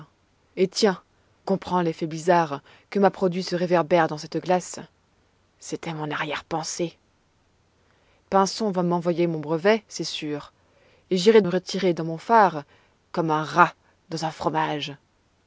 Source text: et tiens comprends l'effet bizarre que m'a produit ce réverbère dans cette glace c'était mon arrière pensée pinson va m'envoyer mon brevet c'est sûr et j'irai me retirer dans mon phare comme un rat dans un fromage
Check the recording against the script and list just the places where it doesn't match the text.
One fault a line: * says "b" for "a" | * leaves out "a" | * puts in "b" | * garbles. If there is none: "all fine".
all fine